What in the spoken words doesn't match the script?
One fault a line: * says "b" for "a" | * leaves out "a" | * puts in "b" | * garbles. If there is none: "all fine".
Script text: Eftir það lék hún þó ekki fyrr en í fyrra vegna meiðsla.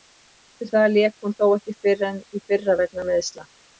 all fine